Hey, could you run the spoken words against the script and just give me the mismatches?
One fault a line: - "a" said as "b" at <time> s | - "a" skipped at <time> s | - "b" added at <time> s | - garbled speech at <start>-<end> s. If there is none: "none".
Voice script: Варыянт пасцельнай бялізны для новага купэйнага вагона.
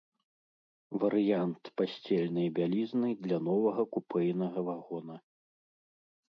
none